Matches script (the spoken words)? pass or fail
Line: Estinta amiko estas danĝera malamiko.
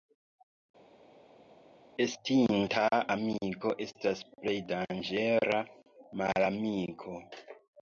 fail